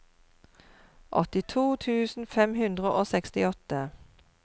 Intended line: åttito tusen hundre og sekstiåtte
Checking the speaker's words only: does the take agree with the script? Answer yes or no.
no